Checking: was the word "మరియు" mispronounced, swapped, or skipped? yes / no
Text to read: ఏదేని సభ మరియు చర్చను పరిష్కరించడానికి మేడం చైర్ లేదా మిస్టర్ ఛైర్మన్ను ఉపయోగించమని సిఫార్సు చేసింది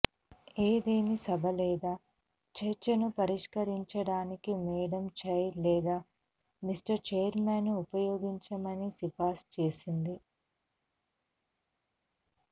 yes